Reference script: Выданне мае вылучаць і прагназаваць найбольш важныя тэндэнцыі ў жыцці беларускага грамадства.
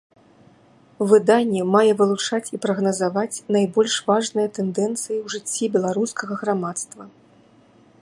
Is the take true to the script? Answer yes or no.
yes